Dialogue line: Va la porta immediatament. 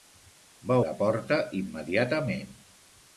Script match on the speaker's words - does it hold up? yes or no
yes